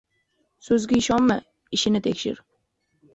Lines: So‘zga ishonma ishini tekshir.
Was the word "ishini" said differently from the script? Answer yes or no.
no